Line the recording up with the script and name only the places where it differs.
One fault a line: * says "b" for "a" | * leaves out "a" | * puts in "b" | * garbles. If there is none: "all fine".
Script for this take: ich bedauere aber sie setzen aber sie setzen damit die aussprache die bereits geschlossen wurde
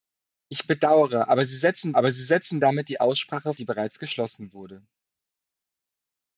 all fine